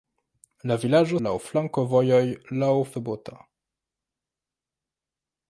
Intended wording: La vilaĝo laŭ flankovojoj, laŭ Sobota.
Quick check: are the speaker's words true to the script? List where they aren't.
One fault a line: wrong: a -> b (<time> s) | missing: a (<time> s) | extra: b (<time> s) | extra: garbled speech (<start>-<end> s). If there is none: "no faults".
no faults